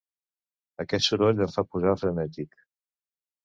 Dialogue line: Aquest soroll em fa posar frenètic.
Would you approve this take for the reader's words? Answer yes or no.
yes